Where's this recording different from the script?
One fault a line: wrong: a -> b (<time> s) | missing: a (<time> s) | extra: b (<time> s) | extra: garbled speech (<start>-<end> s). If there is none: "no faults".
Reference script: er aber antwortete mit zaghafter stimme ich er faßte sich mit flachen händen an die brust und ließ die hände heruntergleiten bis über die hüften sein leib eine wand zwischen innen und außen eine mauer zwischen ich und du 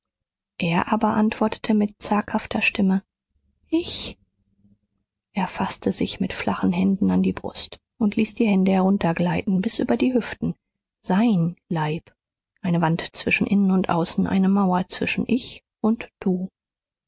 no faults